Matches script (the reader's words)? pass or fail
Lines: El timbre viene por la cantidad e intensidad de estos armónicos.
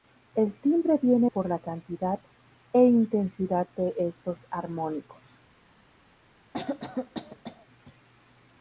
pass